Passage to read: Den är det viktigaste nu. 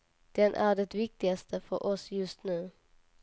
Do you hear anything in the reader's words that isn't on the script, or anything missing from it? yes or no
yes